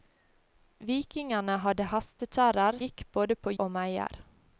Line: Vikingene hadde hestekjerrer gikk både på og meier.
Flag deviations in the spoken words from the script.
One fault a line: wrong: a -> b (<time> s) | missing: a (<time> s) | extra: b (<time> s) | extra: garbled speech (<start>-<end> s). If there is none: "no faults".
no faults